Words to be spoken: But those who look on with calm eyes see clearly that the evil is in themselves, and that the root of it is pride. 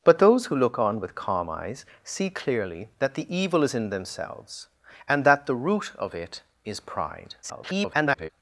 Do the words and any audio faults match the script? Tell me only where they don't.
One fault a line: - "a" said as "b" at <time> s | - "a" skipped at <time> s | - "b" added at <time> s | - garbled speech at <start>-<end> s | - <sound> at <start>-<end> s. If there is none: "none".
- garbled speech at 7.4-8.3 s